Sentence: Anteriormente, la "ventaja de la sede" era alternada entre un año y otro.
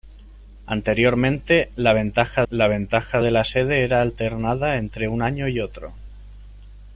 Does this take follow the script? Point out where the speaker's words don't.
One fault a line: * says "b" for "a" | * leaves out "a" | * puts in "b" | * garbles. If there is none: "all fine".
* puts in "la ventaja"